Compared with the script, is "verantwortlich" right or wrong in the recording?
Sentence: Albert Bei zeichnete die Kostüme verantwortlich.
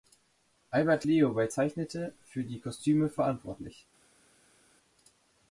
right